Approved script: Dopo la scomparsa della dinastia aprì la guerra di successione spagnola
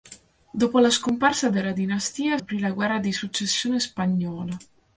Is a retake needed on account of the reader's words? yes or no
no